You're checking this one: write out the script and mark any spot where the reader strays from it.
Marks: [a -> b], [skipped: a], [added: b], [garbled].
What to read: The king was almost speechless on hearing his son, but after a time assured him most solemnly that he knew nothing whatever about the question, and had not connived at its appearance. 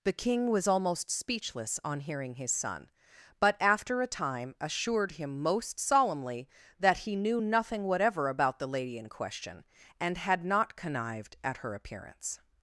The king was almost speechless on hearing his son, but after a time assured him most solemnly that he knew nothing whatever about the [added: lady in] question, and had not connived at [its -> her] appearance.